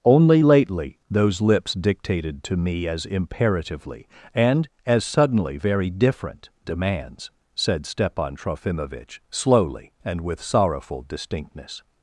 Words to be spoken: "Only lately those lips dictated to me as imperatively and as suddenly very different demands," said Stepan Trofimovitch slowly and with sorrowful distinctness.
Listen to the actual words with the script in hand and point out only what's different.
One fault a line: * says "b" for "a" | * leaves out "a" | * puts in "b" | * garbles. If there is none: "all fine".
all fine